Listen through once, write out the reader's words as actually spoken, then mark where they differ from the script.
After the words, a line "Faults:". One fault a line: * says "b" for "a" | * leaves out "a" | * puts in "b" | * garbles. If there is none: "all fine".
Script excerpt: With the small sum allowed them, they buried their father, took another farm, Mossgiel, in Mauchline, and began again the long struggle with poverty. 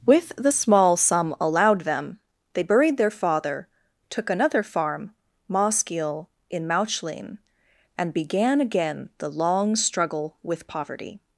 With the small sum allowed them, they buried their father, took another farm, Mossgiel, in Mauchline, and began again the long struggle with poverty.
Faults:
all fine